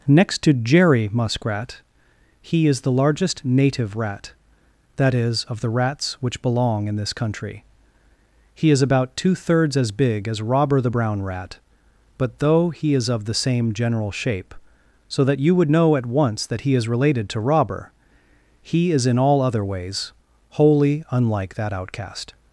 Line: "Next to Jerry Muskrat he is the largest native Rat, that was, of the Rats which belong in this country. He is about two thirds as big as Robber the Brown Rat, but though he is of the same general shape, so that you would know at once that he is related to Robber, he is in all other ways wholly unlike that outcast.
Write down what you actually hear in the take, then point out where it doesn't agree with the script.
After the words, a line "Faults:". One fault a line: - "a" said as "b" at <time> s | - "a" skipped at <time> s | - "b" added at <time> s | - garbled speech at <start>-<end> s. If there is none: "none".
"Next to Jerry Muskrat he is the largest native Rat, that is, of the Rats which belong in this country. He is about two thirds as big as Robber the Brown Rat, but though he is of the same general shape, so that you would know at once that he is related to Robber, he is in all other ways wholly unlike that outcast.
Faults:
- "was" said as "is" at 5.1 s